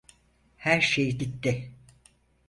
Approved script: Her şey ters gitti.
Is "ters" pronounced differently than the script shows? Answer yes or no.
yes